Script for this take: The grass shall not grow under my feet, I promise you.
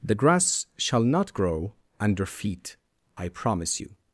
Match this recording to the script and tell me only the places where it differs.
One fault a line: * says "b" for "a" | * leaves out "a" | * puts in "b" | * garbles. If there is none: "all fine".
* leaves out "my"